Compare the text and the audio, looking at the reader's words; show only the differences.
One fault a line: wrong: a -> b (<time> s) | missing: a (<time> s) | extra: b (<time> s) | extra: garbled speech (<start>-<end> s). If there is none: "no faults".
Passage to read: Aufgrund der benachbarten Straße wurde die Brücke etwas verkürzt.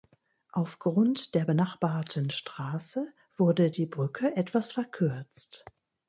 no faults